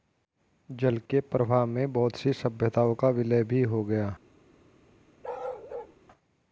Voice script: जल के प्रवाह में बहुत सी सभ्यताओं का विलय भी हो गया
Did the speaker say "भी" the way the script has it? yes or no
yes